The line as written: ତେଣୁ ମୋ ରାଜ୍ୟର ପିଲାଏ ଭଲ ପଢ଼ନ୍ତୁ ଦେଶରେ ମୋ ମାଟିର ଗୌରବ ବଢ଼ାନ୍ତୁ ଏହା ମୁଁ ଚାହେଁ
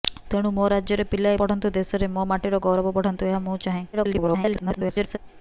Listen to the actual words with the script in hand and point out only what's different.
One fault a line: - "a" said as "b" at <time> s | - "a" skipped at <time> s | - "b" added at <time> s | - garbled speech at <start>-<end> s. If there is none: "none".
- "ଭଲ" skipped at 1.4 s
- garbled speech at 3.9-5.2 s